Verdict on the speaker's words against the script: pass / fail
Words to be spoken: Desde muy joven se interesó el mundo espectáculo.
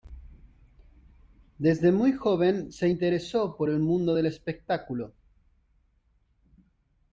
fail